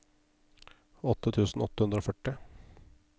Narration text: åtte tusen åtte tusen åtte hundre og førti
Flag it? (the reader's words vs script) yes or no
yes